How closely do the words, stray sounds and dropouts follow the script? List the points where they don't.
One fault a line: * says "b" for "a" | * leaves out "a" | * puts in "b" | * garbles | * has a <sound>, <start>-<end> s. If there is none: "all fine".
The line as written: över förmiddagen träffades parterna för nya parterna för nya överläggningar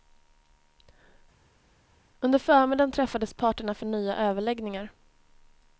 * says "under" for "över"
* leaves out "parterna för nya"